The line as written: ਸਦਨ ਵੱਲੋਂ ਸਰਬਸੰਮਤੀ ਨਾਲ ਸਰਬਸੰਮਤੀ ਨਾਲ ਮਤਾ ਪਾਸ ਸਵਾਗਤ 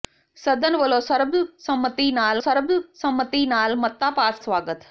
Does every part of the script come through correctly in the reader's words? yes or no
yes